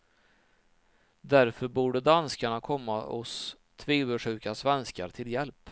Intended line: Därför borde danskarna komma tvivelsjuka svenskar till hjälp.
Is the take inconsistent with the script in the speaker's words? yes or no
yes